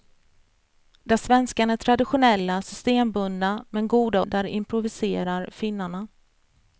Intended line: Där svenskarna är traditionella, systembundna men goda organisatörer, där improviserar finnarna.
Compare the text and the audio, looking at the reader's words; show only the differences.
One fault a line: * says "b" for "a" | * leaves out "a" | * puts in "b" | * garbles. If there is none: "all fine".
* leaves out "organisatörer"